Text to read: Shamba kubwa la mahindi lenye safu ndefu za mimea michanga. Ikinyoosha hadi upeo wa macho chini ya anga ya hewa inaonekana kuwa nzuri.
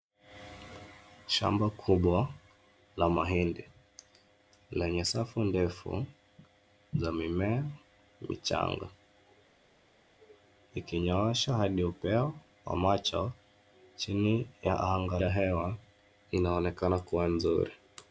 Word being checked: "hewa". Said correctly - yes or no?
yes